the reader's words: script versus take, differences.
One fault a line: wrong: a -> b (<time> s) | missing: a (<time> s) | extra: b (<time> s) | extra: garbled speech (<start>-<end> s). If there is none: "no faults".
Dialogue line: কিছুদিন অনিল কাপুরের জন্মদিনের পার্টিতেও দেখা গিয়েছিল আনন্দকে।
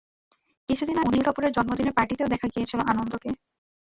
no faults